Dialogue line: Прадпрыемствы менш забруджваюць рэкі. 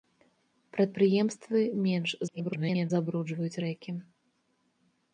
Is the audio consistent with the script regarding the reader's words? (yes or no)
no